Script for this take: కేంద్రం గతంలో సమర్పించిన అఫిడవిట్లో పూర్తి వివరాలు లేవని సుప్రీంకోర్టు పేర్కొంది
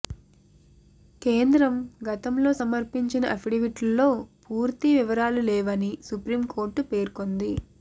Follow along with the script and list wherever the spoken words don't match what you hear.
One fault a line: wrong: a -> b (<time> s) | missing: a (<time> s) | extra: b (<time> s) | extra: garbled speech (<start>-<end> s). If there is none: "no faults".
no faults